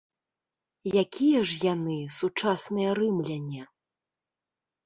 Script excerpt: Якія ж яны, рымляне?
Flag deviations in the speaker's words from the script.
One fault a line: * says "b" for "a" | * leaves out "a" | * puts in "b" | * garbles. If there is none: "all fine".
* puts in "сучасныя"